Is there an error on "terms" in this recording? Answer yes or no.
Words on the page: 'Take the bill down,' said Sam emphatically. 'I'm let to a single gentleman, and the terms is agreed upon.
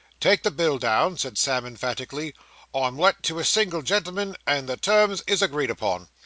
no